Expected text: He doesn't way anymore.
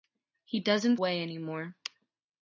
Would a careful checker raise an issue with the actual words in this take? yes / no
no